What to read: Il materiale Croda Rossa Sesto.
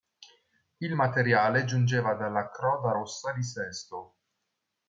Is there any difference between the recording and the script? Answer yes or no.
yes